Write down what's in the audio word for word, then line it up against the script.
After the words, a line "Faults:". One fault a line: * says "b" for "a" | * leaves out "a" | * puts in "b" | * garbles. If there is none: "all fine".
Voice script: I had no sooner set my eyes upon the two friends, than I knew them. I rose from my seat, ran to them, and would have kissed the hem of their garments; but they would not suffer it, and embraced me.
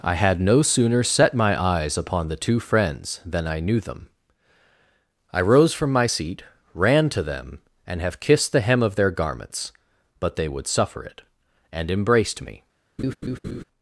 I had no sooner set my eyes upon the two friends, than I knew them. I rose from my seat, ran to them, and have kissed the hem of their garments; but they would suffer it, and embraced me.
Faults:
* leaves out "would"
* leaves out "not"